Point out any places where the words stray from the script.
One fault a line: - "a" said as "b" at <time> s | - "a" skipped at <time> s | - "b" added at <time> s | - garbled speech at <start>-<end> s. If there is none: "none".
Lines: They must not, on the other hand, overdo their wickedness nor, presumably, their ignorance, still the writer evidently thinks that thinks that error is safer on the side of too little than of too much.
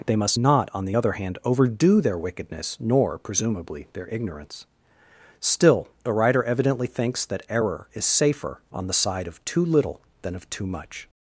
- "thinks that" skipped at 7.4 s